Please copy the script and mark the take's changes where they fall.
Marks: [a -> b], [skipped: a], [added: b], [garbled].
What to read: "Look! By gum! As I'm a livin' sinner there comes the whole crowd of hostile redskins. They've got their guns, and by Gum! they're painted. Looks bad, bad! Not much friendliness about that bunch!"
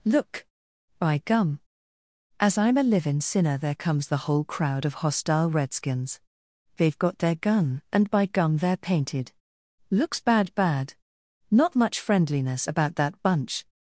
"Look! By gum! As I'm a livin' sinner there comes the whole crowd of hostile redskins. They've got their [guns, -> gun] and by Gum! they're painted. Looks bad, bad! Not much friendliness about that bunch!"